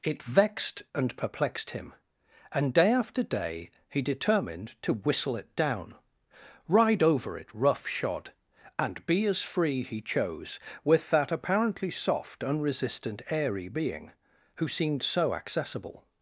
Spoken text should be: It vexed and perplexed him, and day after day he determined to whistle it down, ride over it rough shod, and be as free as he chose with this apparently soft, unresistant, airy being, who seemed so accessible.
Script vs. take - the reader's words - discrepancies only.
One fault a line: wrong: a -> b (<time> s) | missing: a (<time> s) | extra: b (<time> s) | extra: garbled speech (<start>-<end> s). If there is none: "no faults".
missing: as (9.8 s)
wrong: this -> that (11.1 s)